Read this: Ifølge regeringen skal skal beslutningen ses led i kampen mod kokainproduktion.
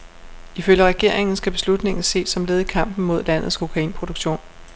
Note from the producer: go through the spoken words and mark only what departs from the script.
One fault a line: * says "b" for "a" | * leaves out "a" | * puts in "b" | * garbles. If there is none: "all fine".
* leaves out "skal"
* puts in "som"
* puts in "landets"